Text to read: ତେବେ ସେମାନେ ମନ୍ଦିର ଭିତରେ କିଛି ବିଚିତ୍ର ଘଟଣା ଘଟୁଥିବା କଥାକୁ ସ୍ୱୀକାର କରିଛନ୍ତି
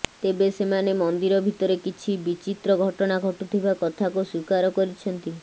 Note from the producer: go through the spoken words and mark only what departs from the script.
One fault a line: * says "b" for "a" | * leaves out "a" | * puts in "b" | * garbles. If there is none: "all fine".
all fine